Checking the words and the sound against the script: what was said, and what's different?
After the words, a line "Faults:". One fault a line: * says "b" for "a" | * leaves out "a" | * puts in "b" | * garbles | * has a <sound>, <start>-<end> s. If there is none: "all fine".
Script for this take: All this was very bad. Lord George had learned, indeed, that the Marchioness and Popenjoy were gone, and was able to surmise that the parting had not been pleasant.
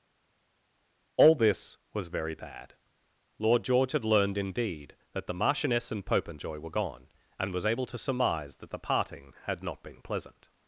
All this was very bad. Lord George had learned, indeed, that the Marchioness and Popenjoy were gone, and was able to surmise that the parting had not been pleasant.
Faults:
all fine